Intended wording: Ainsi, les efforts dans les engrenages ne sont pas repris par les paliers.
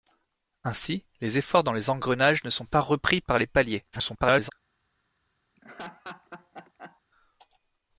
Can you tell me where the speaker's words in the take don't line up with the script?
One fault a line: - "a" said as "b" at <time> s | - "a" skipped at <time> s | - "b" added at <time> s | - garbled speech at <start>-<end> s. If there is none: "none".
- garbled speech at 3.9-4.5 s